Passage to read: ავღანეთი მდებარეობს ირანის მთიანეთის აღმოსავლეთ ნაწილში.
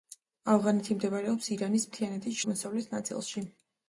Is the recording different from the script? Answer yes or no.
no